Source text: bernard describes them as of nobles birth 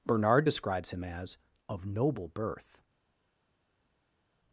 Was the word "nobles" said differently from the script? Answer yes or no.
yes